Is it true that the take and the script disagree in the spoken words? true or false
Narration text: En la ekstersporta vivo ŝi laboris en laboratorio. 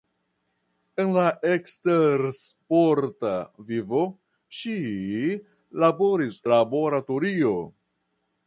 true